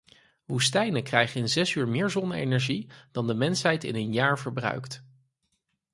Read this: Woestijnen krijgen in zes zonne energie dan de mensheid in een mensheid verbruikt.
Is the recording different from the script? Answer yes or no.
yes